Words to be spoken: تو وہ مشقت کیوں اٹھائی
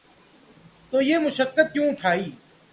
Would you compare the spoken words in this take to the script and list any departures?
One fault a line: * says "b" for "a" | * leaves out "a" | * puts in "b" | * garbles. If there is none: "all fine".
* says "یہ" for "وہ"